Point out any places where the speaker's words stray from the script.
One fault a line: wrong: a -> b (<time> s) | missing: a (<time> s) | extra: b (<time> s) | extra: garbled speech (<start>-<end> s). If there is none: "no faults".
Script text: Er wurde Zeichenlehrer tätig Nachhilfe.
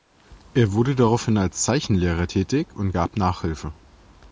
extra: daraufhin als (0.9 s)
extra: und gab (2.7 s)